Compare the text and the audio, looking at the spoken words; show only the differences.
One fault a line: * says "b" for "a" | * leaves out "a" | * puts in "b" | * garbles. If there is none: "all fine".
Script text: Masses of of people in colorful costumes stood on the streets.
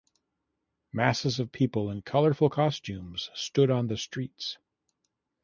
* leaves out "of"